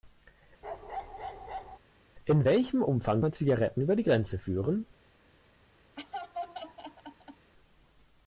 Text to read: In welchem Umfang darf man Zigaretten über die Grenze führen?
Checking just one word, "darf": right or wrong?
wrong